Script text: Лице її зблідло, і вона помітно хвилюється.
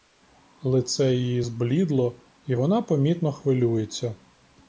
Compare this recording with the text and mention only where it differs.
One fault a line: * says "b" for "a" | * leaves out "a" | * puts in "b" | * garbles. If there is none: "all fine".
all fine